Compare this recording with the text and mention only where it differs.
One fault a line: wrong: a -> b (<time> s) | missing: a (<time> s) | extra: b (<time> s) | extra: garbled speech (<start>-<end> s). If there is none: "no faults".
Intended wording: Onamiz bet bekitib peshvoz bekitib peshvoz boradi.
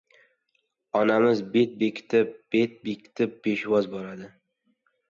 wrong: peshvoz -> bet (2.6 s)